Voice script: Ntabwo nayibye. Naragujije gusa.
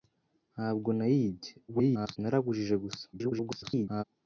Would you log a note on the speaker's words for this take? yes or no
yes